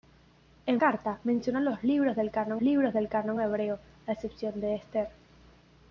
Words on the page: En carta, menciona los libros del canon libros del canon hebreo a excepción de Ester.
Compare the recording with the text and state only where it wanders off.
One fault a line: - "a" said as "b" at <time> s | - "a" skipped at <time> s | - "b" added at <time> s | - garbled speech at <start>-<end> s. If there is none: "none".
none